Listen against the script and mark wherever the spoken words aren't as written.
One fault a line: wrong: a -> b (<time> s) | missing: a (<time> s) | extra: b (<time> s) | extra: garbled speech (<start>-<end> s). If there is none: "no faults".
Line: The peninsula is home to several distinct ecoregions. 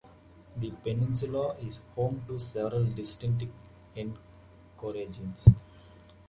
no faults